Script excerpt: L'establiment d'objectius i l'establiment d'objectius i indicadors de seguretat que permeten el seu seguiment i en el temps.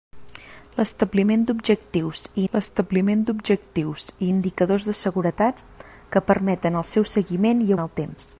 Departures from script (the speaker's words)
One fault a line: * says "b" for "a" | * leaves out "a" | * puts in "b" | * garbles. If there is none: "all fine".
all fine